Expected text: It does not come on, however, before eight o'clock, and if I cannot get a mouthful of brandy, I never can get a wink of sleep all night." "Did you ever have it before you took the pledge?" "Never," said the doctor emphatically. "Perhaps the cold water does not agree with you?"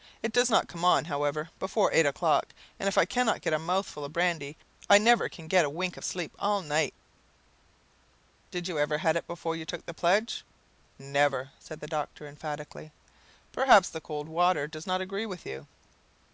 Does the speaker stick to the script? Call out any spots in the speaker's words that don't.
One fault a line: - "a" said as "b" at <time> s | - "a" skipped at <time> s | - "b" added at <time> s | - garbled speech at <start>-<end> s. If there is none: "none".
none